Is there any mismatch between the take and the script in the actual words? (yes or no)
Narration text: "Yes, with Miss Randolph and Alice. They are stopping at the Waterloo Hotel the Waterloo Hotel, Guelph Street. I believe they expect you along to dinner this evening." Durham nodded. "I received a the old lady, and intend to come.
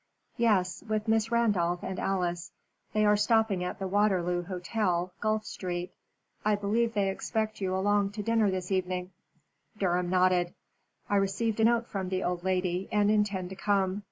yes